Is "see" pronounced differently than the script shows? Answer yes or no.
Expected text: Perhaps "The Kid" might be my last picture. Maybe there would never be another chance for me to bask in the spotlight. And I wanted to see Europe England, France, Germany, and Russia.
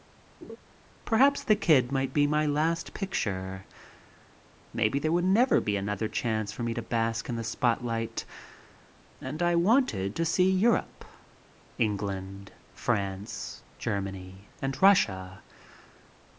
no